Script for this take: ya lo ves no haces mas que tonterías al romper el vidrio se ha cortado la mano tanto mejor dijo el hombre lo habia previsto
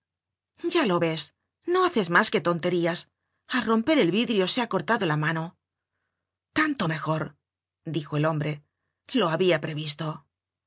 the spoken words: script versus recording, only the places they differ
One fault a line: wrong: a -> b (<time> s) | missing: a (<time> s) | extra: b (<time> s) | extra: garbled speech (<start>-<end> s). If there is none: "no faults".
no faults